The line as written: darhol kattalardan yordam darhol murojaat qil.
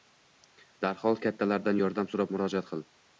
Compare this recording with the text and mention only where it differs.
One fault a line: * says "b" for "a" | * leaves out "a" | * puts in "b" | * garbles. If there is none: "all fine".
* says "so‘rab" for "darhol"